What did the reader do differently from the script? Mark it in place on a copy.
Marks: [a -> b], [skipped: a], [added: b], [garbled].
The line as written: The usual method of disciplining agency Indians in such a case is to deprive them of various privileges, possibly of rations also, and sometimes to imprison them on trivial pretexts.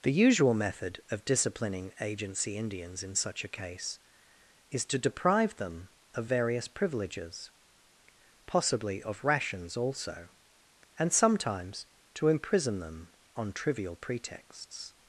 The usual method of disciplining agency Indians in such a case is to deprive them of various privileges, possibly of rations also, and sometimes to imprison them on trivial pretexts.